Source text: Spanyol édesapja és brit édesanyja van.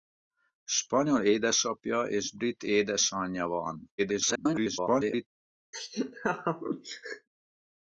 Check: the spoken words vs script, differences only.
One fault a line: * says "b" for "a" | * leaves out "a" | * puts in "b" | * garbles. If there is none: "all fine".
* garbles